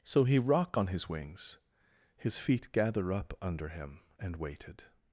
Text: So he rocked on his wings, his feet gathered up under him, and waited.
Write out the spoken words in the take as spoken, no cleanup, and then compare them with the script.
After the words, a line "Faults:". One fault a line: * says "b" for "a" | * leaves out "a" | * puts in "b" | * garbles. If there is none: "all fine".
So he rock on his wings, his feet gather up under him, and waited.
Faults:
* says "rock" for "rocked"
* says "gather" for "gathered"